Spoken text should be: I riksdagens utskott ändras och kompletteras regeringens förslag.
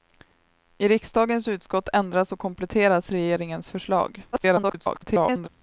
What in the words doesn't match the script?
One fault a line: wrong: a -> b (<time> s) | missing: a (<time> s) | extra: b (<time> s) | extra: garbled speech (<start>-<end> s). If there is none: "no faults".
extra: garbled speech (4.3-5.5 s)